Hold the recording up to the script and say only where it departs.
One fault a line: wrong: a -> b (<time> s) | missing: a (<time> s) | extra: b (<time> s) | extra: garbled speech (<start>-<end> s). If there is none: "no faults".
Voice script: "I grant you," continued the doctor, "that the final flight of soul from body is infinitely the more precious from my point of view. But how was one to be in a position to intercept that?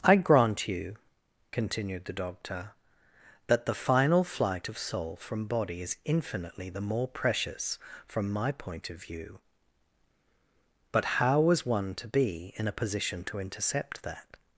no faults